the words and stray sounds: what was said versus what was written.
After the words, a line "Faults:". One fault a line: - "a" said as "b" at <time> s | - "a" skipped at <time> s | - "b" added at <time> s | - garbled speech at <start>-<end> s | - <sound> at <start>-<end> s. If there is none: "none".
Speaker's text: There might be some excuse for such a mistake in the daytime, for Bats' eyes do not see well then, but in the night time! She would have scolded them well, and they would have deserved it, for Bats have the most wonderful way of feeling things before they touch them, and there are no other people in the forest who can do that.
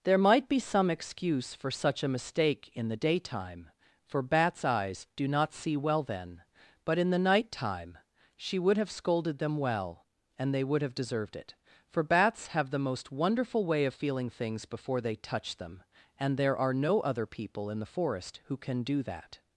There might be some excuse for such a mistake in the daytime, for Bats' eyes do not see well then, but in the night time! She would have scolded them well, and they would have deserved it, for Bats have the most wonderful way of feeling things before they touch them, and there are no other people in the forest who can do that.
Faults:
none